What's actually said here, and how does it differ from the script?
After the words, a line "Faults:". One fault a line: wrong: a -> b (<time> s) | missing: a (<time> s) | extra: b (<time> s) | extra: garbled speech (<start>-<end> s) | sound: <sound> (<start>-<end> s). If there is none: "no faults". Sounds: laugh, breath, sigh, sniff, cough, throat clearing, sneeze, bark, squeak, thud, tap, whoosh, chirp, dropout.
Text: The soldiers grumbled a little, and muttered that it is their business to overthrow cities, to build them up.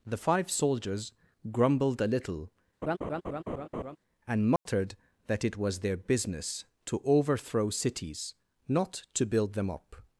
The five soldiers grumbled a little, and muttered that it was their business to overthrow cities, not to build them up.
Faults:
extra: five (0.2 s)
sound: laugh (2.8-4.0 s)
sound: dropout (4.6-4.7 s)
wrong: is -> was (5.6 s)
extra: not (8.7 s)